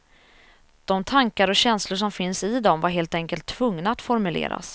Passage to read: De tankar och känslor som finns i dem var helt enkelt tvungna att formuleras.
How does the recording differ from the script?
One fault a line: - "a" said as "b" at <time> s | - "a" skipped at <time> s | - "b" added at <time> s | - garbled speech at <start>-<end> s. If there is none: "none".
none